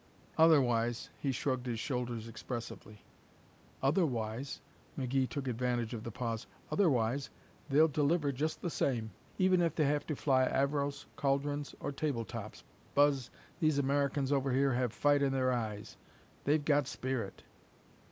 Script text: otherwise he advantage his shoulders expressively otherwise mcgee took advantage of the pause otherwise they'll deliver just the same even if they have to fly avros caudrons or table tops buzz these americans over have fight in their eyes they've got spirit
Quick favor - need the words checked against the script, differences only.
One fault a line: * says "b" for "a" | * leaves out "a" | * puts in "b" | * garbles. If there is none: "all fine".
* says "shrugged" for "advantage"
* puts in "here"